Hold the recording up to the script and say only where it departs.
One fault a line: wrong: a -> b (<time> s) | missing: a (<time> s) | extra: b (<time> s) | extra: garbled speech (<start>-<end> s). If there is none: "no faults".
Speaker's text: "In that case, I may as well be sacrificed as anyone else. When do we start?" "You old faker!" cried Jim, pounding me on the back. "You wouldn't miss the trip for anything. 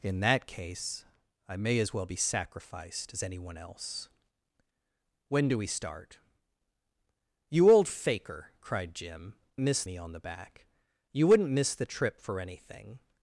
wrong: pounding -> miss (9.6 s)